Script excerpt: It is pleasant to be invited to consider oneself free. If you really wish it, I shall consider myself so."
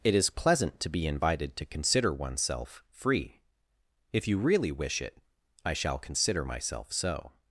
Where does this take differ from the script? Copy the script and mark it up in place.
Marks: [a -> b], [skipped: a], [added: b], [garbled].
It is pleasant to be invited to consider oneself free. If you really wish it, I shall consider myself so."